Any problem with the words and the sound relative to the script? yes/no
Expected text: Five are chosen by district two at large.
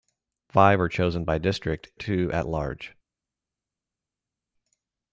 no